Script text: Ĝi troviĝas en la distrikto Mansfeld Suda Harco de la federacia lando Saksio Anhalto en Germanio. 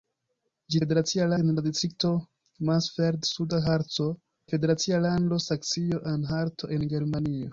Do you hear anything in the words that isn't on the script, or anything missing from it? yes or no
yes